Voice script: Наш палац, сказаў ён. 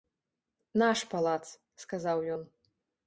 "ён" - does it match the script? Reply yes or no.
yes